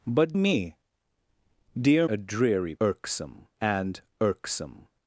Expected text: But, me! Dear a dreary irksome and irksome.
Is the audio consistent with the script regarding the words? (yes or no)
yes